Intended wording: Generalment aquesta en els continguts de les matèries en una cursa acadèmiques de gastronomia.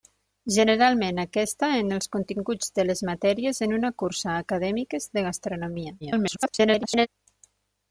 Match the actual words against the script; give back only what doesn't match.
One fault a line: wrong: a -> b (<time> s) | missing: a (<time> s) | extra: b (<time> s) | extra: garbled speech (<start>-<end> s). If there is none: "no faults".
extra: garbled speech (6.0-7.1 s)